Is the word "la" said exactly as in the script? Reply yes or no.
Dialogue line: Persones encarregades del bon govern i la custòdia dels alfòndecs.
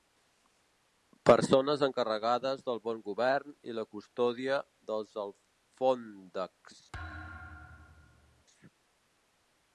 yes